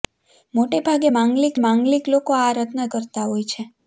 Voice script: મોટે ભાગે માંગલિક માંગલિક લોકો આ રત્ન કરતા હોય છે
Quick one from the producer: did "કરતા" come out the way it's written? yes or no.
yes